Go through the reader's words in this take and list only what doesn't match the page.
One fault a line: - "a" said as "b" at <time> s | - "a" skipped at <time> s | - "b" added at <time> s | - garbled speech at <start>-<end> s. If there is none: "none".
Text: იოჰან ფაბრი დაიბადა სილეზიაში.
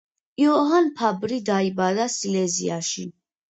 none